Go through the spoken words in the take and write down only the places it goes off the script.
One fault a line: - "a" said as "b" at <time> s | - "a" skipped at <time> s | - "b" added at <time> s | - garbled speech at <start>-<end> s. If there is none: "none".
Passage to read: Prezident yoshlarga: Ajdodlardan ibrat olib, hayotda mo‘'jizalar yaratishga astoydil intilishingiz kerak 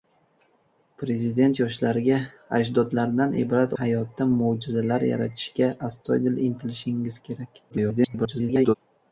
- "olib" skipped at 3.8 s
- garbled speech at 7.7-8.8 s